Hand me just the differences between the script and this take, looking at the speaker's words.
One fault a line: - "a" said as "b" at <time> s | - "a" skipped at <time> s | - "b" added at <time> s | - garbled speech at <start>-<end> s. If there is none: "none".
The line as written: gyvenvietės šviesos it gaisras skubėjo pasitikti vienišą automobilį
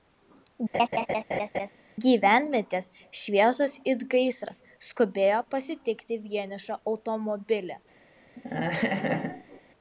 none